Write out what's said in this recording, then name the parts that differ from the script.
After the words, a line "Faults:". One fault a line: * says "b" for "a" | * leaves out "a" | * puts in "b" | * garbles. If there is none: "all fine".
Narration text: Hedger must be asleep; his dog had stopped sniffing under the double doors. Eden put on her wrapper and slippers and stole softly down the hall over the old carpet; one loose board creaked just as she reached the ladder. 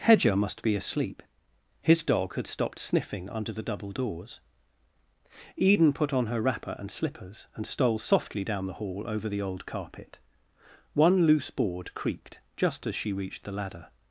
Hedger must be asleep; his dog had stopped sniffing under the double doors. Eden put on her wrapper and slippers and stole softly down the hall over the old carpet; one loose board creaked just as she reached the ladder.
Faults:
all fine